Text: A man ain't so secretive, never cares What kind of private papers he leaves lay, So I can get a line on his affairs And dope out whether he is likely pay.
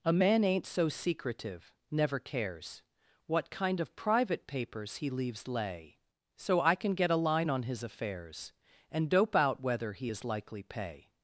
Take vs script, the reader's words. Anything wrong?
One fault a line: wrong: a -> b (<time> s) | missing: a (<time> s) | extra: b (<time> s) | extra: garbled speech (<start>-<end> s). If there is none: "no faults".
no faults